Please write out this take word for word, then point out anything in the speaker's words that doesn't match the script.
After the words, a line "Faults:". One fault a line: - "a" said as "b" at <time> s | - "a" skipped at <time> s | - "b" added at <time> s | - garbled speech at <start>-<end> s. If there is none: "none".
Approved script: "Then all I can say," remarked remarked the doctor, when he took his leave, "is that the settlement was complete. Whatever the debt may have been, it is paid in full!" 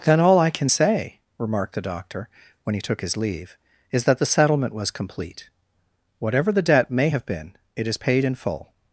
"Then all I can say," remarked the doctor, when he took his leave, "is that the settlement was complete. Whatever the debt may have been, it is paid in full!"
Faults:
- "remarked" skipped at 1.7 s